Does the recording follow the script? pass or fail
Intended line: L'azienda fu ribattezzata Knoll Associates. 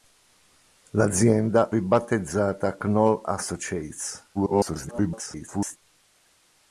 fail